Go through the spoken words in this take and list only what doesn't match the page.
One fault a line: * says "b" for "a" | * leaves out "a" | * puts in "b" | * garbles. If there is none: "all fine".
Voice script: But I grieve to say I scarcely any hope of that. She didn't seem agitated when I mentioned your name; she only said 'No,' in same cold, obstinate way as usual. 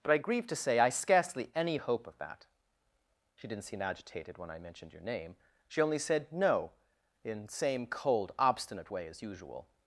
all fine